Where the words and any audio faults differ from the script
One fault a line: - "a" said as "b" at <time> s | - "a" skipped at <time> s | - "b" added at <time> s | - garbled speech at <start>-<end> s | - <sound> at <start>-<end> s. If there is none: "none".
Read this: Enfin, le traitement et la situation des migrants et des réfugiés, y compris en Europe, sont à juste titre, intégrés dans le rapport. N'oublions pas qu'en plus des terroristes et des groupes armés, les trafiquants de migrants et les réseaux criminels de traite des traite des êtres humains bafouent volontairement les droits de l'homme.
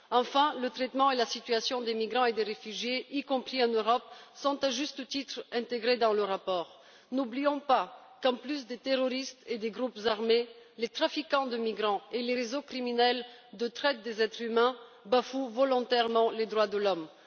- "traite des" skipped at 14.2 s